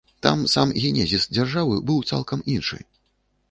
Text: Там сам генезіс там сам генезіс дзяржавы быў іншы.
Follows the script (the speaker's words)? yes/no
no